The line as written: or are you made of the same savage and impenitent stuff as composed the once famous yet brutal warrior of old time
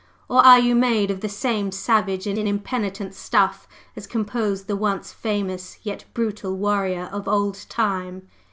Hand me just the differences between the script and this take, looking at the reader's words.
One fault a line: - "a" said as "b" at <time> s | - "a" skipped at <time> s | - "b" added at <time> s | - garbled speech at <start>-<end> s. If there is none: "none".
- "and" added at 2.3 s